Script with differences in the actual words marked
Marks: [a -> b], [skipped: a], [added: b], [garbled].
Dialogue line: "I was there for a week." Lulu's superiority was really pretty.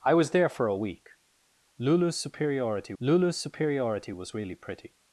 "I was there for a week." Lulu's superiority [added: lulu's superiority] was really pretty.